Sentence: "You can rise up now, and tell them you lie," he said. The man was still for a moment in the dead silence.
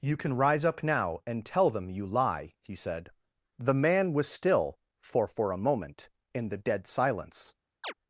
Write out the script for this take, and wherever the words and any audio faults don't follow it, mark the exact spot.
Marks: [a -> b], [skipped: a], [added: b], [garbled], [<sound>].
"You can rise up now, and tell them you lie," he said. The man was still for [added: for] a moment in the dead silence. [chirp]